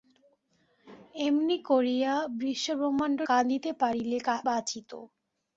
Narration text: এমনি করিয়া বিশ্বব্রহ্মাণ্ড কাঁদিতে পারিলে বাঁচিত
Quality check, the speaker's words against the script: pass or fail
pass